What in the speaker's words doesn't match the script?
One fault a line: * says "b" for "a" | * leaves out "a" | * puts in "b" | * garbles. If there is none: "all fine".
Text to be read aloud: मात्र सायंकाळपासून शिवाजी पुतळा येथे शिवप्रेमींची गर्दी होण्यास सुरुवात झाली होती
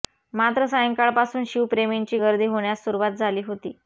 * leaves out "शिवाजी पुतळा येथे"